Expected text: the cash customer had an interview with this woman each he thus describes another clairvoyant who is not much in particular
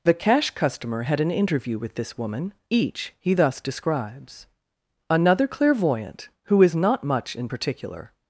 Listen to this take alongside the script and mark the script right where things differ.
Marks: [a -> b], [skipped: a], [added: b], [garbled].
the cash customer had an interview with this woman each he thus describes another clairvoyant who is not much in particular